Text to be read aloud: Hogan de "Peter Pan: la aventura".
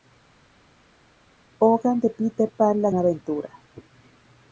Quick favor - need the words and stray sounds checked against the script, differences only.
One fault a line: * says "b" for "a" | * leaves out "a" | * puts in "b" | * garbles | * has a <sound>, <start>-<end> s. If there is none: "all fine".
all fine